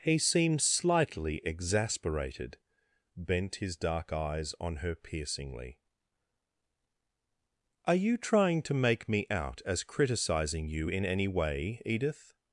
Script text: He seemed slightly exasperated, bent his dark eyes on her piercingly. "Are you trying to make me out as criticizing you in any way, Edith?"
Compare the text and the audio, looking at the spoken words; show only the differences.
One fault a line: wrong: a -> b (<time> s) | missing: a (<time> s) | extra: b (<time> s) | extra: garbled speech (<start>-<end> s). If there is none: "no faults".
no faults